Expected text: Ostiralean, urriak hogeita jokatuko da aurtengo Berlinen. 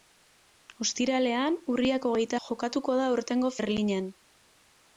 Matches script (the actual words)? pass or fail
pass